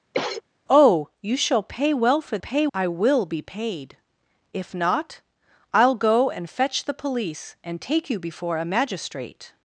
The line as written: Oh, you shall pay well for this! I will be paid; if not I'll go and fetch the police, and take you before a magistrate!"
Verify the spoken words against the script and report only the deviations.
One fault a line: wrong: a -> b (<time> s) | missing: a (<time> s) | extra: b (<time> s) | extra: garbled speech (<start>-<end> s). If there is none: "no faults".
wrong: this -> pay (2.4 s)